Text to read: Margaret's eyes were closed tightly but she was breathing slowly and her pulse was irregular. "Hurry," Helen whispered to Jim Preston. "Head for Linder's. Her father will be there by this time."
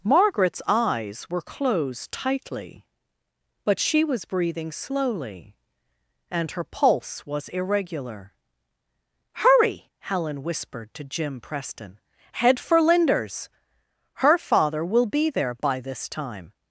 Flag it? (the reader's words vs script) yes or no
no